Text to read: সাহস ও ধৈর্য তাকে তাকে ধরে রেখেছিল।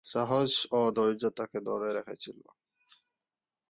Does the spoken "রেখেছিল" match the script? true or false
true